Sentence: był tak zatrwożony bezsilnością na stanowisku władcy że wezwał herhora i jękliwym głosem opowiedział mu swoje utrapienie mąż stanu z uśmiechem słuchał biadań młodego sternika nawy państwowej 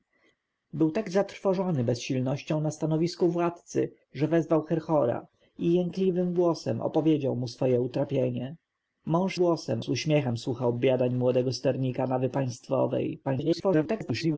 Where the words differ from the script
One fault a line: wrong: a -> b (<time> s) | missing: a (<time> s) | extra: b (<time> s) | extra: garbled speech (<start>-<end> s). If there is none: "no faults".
wrong: stanu -> głosem (9.4 s)
extra: garbled speech (13.2-14.4 s)